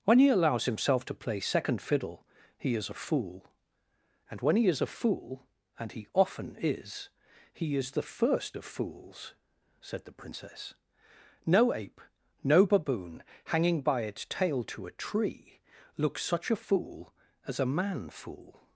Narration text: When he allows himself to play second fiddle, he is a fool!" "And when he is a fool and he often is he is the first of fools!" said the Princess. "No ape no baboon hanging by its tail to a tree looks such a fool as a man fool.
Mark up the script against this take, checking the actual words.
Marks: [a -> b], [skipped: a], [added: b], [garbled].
When he allows himself to play second fiddle, he is a fool!" "And when he is a fool and he often is he is the first of fools!" said the Princess. "No ape no baboon hanging by its tail to a tree looks such a fool as a man fool.